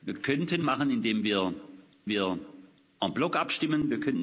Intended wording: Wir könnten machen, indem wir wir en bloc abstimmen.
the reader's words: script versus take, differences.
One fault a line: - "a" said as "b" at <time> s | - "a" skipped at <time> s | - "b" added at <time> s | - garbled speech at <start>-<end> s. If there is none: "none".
none